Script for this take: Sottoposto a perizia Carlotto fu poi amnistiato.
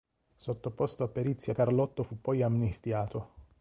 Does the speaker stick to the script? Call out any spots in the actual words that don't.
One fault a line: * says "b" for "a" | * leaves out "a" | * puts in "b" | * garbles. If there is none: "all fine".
all fine